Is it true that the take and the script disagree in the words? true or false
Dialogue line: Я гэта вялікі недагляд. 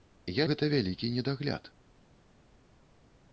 false